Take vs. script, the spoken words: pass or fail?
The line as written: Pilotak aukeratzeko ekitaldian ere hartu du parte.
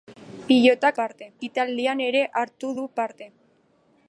fail